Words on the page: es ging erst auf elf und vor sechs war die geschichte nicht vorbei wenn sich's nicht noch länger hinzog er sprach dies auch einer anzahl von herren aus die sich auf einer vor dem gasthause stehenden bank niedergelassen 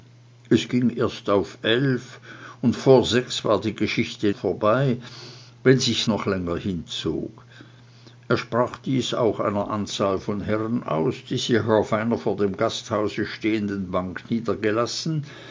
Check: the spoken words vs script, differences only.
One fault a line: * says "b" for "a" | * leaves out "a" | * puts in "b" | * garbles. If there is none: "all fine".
* leaves out "nicht"
* leaves out "nicht"